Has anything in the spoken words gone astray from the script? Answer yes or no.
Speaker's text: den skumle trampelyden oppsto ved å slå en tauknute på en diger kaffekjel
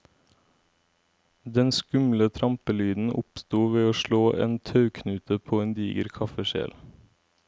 no